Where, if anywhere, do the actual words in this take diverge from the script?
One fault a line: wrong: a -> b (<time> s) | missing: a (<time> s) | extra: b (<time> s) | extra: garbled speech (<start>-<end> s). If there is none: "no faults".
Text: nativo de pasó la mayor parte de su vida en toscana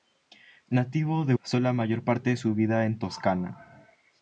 no faults